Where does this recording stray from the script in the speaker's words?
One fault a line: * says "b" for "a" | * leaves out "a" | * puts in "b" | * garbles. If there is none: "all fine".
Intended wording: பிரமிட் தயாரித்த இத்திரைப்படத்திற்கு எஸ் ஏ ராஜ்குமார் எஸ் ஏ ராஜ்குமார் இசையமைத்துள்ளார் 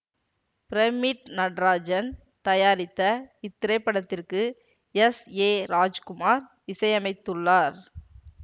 * puts in "நடராஜன்"
* leaves out "எஸ் ஏ ராஜ்குமார்"